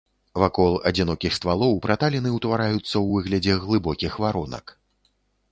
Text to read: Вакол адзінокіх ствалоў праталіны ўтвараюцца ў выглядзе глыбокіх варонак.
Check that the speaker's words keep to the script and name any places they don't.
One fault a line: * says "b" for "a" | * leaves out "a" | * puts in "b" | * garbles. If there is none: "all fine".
all fine